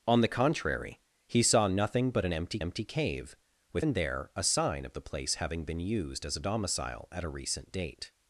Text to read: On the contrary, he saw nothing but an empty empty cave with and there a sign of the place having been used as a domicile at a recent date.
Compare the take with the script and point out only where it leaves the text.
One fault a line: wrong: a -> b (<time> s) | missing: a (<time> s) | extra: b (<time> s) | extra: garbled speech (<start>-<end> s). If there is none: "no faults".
no faults